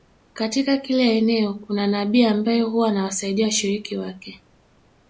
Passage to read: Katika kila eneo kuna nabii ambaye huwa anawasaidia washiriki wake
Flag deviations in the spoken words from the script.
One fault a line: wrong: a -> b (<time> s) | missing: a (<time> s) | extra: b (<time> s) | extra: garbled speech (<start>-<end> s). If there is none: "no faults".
no faults